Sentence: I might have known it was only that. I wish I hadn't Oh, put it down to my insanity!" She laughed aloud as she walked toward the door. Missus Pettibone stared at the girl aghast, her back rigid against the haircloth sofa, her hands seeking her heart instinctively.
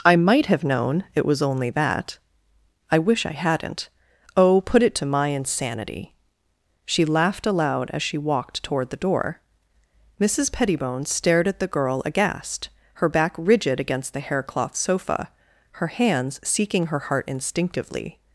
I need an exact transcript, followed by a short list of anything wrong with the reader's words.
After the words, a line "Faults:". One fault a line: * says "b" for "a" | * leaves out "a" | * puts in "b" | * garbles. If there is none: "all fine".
I might have known it was only that. I wish I hadn't Oh, put it to my insanity!" She laughed aloud as she walked toward the door. Missus Pettibone stared at the girl aghast, her back rigid against the haircloth sofa, her hands seeking her heart instinctively.
Faults:
* leaves out "down"